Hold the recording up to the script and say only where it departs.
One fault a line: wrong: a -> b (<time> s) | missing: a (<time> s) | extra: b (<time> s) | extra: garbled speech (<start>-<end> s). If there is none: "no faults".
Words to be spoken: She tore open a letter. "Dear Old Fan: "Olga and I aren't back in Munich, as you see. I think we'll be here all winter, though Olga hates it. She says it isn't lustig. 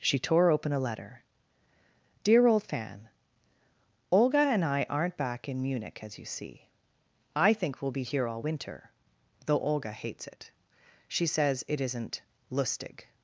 no faults